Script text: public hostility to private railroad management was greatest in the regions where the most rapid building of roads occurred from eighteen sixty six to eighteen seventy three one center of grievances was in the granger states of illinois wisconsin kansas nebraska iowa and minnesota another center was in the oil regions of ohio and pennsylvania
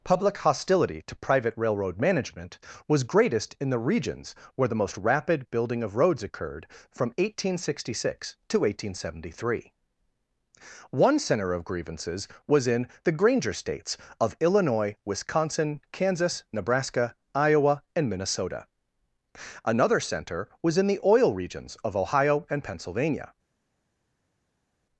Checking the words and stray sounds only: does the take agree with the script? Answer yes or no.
yes